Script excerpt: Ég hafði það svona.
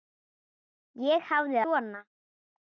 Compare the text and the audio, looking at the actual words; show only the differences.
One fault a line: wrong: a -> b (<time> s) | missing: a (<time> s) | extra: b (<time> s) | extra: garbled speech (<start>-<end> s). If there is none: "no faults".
missing: það (1.6 s)